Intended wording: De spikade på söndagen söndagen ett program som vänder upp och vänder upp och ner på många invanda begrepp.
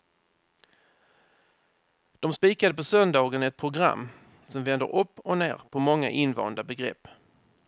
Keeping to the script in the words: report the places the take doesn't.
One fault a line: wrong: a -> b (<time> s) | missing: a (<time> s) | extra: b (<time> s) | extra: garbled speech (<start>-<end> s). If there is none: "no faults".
missing: söndagen (3.4 s)
missing: vänder upp och (5.4 s)